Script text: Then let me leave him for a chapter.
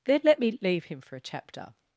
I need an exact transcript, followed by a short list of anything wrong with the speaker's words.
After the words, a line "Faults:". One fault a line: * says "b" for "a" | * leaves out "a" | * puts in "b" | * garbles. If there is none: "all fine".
Then let me leave him for a chapter.
Faults:
all fine